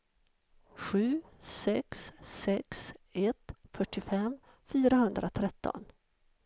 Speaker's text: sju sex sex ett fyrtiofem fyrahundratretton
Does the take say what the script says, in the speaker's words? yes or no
yes